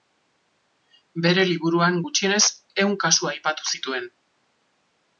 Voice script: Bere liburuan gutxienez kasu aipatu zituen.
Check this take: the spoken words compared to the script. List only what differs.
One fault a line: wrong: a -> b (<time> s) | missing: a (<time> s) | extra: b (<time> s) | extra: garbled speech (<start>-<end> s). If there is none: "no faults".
extra: ehun (2.8 s)